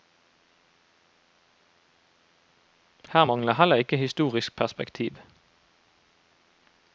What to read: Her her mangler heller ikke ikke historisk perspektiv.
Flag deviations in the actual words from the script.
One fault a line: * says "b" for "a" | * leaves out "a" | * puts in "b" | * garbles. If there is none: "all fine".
* leaves out "her"
* leaves out "ikke"